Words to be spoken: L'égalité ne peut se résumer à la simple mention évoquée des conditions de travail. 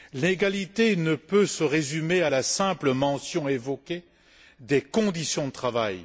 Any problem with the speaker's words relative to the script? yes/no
no